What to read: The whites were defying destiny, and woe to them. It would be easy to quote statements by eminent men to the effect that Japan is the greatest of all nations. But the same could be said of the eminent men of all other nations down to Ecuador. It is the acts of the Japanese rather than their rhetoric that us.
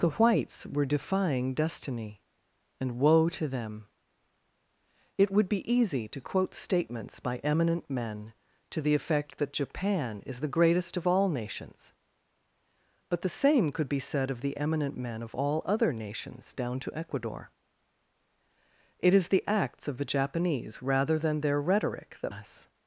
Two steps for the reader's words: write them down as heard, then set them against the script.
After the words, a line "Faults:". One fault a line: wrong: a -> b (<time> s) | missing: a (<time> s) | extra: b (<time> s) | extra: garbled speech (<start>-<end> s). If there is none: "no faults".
The whites were defying destiny, and woe to them. It would be easy to quote statements by eminent men to the effect that Japan is the greatest of all nations. But the same could be said of the eminent men of all other nations down to Ecuador. It is the acts of the Japanese rather than their rhetoric that us.
Faults:
no faults